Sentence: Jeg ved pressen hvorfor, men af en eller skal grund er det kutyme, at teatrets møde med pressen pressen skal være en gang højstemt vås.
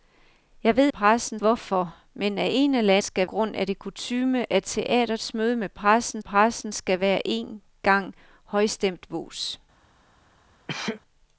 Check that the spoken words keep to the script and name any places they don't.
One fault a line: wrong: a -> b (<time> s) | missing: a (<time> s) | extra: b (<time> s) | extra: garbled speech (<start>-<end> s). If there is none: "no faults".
no faults